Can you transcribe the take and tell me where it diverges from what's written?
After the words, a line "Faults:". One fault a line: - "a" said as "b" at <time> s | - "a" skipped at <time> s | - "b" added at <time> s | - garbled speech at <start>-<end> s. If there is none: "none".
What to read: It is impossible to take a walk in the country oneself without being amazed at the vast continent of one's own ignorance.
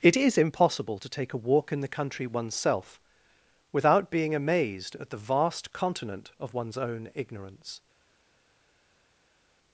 It is impossible to take a walk in the country oneself without being amazed at the vast continent of one's own ignorance.
Faults:
none